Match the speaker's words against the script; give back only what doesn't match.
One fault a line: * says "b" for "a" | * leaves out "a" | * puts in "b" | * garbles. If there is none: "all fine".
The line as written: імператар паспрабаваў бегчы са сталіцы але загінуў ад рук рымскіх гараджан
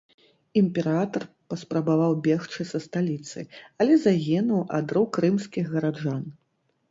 all fine